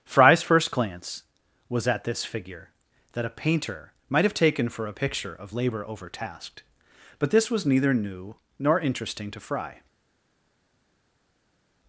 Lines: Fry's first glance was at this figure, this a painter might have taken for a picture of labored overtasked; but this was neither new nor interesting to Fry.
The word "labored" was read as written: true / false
false